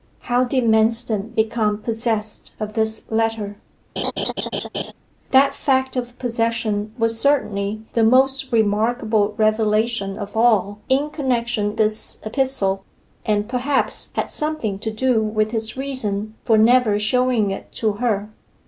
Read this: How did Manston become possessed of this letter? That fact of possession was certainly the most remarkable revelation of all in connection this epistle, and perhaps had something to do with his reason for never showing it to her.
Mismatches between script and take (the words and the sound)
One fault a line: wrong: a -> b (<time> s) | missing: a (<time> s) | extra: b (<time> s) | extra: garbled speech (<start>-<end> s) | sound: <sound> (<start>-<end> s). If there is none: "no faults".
sound: laugh (4.0-4.9 s)